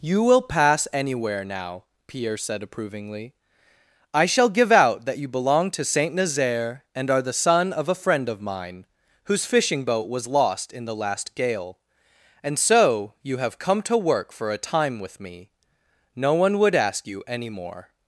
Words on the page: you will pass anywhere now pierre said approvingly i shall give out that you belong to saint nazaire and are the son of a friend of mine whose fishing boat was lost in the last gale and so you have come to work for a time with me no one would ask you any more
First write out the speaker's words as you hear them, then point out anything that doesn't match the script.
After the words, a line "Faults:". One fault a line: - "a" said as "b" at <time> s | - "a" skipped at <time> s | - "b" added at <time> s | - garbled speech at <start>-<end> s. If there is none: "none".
you will pass anywhere now pierre said approvingly i shall give out that you belong to saint nazaire and are the son of a friend of mine whose fishing boat was lost in the last gale and so you have come to work for a time with me no one would ask you any more
Faults:
none